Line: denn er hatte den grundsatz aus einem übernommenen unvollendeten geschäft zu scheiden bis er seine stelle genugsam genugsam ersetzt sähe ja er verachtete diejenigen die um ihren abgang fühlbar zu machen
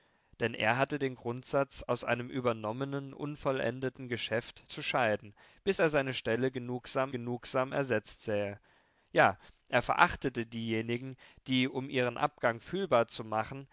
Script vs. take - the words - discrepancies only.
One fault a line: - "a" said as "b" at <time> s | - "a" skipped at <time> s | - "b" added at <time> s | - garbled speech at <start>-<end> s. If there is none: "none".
none